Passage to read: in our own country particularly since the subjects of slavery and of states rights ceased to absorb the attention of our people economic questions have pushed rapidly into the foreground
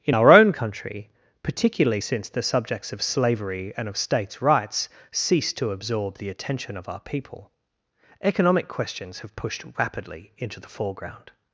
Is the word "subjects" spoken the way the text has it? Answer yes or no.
yes